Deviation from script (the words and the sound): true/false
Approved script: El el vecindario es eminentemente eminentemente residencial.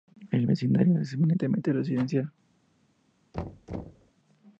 true